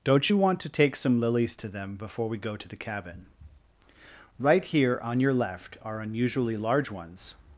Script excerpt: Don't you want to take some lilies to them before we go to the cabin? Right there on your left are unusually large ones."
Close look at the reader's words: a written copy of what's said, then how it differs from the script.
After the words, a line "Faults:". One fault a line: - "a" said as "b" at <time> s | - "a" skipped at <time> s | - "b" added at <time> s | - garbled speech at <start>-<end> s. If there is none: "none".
Don't you want to take some lilies to them before we go to the cabin? Right here on your left are unusually large ones."
Faults:
- "there" said as "here" at 4.6 s